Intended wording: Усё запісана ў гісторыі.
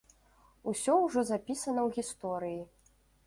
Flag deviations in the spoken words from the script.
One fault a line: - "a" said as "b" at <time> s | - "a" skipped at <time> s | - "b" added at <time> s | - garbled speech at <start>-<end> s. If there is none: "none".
- "ўжо" added at 1.0 s